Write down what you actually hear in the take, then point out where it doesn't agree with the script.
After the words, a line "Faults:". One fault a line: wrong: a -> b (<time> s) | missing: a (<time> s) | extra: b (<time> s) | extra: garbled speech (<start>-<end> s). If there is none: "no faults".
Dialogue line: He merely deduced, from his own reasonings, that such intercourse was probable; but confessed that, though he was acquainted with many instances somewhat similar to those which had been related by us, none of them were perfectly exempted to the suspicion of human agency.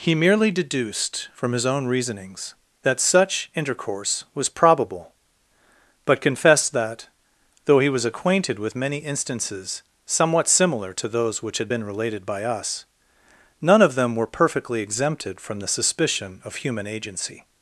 He merely deduced, from his own reasonings, that such intercourse was probable; but confessed that, though he was acquainted with many instances somewhat similar to those which had been related by us, none of them were perfectly exempted from the suspicion of human agency.
Faults:
wrong: to -> from (15.4 s)